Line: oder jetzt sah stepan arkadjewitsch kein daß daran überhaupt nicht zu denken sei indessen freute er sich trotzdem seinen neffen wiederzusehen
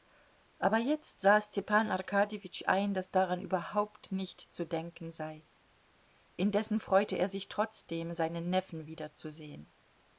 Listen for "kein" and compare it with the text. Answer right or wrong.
wrong